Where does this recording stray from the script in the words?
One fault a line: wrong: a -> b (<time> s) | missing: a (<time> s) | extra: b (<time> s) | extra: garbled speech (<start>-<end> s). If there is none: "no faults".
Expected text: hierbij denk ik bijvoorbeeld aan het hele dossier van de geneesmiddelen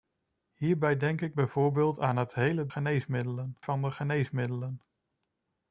wrong: dossier -> geneesmiddelen (2.7 s)